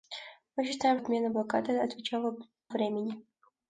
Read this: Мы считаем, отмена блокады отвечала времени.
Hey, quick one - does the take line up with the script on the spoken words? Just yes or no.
yes